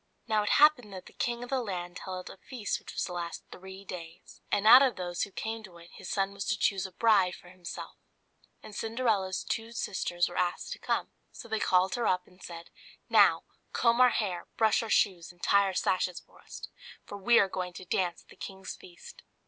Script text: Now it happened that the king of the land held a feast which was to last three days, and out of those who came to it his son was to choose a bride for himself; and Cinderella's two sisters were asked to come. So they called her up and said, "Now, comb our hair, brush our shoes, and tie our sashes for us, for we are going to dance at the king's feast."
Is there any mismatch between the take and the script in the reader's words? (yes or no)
no